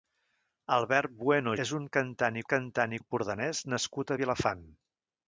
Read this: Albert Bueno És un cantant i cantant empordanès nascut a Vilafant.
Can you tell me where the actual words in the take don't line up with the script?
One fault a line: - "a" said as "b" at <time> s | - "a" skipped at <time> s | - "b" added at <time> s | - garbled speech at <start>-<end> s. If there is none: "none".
none